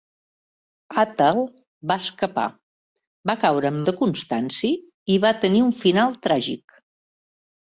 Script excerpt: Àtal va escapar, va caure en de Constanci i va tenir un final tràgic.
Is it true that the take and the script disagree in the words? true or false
false